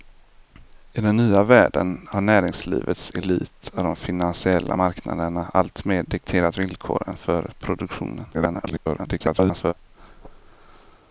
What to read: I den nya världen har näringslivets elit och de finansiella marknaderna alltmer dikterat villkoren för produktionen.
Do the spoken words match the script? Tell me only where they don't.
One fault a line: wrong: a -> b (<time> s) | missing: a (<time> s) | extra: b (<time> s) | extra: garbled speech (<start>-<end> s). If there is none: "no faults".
extra: garbled speech (8.3-9.7 s)